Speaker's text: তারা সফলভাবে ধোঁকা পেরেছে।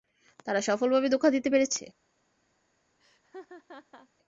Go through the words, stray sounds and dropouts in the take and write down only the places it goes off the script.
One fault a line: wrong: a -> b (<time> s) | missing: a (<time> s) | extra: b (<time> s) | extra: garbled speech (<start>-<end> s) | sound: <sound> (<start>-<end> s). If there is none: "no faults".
extra: দিতে (1.4 s)
sound: laugh (3.0-4.1 s)